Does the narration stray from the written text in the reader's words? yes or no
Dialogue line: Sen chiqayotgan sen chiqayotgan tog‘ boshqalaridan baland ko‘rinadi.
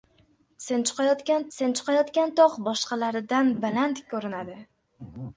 no